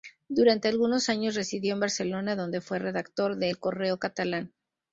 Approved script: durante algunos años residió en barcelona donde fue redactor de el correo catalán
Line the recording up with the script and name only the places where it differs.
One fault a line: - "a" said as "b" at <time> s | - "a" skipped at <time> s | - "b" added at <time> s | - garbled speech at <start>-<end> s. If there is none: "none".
none